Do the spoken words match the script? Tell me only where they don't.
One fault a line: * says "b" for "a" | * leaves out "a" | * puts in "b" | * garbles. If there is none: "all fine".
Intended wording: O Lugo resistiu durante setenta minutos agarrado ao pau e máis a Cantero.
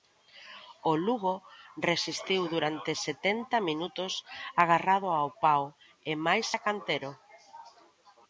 all fine